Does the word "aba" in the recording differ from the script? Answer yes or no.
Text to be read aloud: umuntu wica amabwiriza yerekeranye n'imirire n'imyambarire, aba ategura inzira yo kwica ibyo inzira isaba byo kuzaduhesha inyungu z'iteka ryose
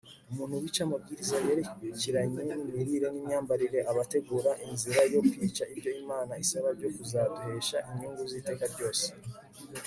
no